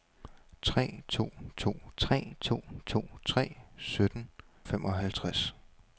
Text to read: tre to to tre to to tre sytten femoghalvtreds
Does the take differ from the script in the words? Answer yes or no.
no